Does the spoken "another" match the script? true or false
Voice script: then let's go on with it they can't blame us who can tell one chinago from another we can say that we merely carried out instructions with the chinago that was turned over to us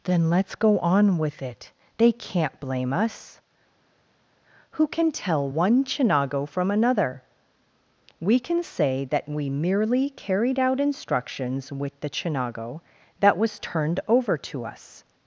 true